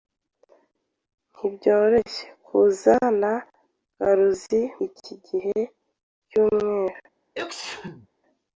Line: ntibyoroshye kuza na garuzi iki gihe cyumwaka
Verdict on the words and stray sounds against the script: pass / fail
fail